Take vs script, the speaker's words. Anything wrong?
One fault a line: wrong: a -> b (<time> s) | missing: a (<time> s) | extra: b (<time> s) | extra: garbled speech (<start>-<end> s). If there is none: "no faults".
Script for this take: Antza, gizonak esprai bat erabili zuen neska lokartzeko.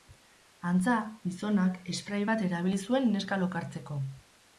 no faults